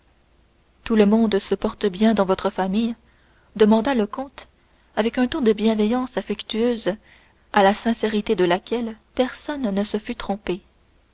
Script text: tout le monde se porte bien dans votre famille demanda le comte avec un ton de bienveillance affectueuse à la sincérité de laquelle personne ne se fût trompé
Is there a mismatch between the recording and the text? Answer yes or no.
no